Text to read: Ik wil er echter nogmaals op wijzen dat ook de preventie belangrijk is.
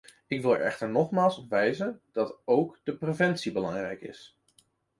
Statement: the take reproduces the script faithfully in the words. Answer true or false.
true